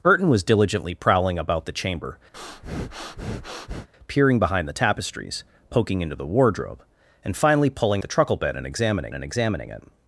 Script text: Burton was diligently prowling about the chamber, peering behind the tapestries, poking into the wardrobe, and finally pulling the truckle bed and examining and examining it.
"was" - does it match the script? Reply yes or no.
yes